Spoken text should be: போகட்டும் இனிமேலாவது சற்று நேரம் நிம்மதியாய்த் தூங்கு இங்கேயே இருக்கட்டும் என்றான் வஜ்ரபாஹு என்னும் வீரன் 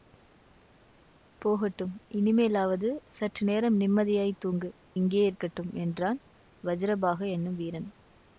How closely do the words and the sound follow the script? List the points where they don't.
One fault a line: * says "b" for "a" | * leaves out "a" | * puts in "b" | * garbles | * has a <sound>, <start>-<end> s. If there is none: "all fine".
all fine